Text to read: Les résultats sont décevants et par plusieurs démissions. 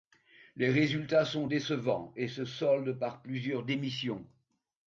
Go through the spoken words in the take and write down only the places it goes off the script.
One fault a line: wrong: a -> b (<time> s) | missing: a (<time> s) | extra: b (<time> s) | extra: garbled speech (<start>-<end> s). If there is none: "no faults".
extra: se soldent (2.3 s)